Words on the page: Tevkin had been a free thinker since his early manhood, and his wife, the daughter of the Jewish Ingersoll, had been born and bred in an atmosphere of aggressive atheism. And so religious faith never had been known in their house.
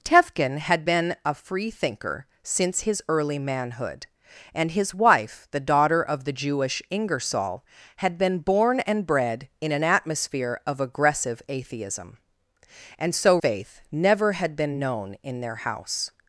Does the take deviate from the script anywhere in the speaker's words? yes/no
yes